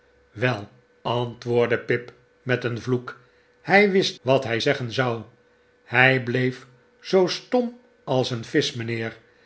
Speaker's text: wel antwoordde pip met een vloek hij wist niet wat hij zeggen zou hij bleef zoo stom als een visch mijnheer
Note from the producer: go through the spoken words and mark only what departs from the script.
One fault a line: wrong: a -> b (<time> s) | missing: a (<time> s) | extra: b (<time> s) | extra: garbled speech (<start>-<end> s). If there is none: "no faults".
missing: niet (4.2 s)